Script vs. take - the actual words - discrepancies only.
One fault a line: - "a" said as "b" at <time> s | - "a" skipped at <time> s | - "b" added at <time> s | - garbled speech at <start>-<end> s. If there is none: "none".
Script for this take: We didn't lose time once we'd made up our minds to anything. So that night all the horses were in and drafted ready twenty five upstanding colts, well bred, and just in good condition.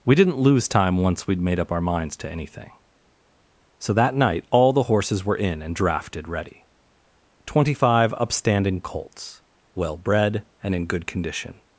- "just" skipped at 10.8 s